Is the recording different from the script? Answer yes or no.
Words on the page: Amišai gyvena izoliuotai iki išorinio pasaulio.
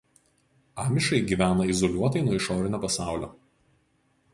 yes